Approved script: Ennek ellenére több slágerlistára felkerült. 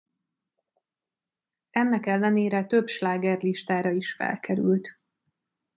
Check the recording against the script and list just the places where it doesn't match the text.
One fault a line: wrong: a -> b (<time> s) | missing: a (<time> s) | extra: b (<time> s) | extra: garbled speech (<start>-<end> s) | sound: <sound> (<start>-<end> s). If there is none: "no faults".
extra: is (3.9 s)